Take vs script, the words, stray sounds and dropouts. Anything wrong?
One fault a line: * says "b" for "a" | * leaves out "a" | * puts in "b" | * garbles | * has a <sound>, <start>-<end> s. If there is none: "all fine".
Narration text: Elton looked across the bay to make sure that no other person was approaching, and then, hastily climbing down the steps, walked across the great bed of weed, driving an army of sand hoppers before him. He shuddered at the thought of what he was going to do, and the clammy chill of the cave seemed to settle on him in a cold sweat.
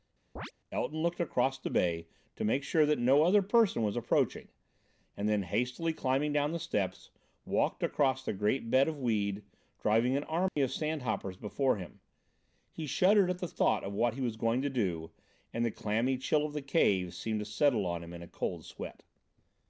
* has a chirp, 0.4-0.5 s
* has a dropout, 10.5-10.6 s